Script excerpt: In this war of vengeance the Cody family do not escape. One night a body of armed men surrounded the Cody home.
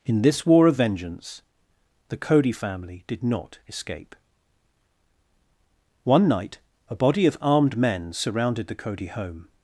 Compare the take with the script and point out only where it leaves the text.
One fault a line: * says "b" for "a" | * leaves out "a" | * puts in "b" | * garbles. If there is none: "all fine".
* says "did" for "do"